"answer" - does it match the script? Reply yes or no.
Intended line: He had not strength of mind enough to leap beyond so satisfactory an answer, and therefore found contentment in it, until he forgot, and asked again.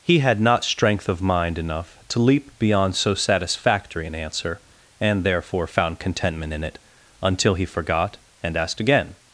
yes